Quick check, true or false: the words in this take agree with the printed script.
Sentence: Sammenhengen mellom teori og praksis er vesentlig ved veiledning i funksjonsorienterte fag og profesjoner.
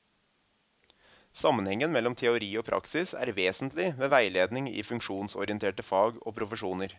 true